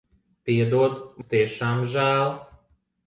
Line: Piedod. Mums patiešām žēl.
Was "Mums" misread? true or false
true